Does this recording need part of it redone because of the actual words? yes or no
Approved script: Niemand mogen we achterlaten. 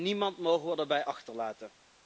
yes